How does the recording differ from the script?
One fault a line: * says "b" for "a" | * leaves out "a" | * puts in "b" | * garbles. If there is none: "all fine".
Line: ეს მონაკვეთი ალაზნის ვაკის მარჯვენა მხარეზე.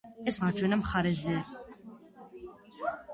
* leaves out "მონაკვეთი ალაზნის ვაკის"